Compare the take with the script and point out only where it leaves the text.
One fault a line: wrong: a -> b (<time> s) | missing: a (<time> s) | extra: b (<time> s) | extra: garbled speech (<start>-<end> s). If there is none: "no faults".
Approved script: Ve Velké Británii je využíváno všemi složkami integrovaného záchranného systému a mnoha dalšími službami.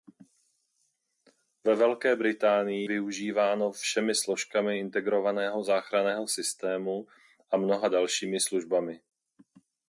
missing: je (2.9 s)